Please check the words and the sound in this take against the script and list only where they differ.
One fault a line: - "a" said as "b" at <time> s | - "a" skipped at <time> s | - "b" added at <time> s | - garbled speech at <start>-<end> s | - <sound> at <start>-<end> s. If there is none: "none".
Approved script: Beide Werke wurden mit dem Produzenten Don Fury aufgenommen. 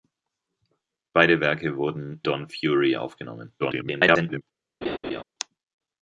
- "mit dem Produzenten" skipped at 2.2 s
- garbled speech at 3.6-4.4 s
- laugh at 4.8-5.2 s